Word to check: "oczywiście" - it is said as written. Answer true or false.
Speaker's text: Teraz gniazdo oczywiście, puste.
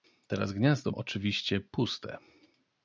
true